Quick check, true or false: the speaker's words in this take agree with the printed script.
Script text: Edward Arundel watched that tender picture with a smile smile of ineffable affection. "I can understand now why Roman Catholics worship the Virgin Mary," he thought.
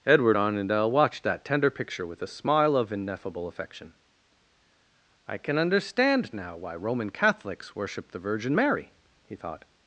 false